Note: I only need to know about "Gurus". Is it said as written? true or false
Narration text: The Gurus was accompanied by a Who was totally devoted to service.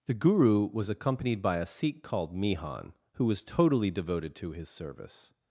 false